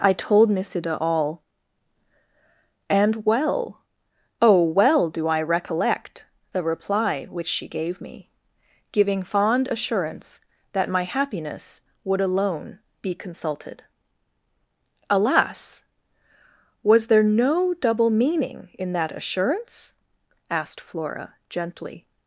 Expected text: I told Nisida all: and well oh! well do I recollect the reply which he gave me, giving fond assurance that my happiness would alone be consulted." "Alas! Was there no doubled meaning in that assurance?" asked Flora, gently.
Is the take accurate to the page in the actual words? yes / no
no